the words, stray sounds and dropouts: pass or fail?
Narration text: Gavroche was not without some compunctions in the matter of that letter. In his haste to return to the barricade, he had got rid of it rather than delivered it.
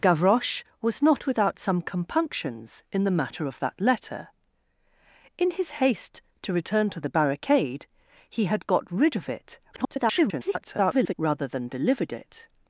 fail